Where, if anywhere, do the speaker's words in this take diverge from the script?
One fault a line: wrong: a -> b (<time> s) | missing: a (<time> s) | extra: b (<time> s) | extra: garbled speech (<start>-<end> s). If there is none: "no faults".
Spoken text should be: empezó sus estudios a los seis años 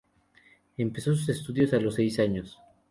no faults